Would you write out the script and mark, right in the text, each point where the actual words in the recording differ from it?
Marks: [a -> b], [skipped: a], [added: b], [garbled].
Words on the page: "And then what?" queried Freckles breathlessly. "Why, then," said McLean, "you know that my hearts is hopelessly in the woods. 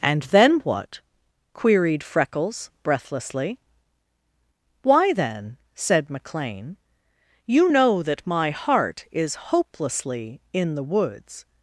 "And then what?" queried Freckles breathlessly. "Why, then," said McLean, "you know that my [hearts -> heart] is hopelessly in the woods.